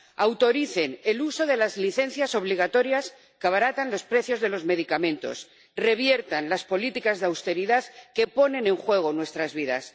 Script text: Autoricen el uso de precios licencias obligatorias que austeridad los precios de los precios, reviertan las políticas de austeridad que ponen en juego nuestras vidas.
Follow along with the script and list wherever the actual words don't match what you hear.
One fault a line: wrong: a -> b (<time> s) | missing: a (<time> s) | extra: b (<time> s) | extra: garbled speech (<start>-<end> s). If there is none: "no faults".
wrong: precios -> las (1.6 s)
wrong: austeridad -> abaratan (3.5 s)
wrong: precios -> medicamentos (4.7 s)